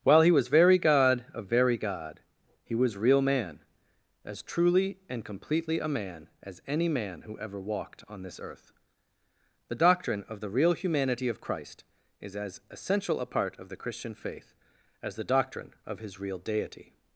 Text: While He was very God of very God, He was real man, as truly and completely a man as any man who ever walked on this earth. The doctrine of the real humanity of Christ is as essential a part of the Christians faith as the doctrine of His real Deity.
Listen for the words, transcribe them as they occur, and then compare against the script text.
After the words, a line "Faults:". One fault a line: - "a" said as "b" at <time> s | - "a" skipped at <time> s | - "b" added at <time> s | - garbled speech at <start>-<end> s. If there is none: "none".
While He was very God of very God, He was real man, as truly and completely a man as any man who ever walked on this earth. The doctrine of the real humanity of Christ is as essential a part of the Christian faith as the doctrine of His real Deity.
Faults:
- "Christians" said as "Christian" at 13.8 s